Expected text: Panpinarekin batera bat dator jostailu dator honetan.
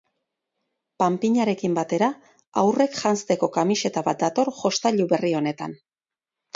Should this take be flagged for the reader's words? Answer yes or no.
yes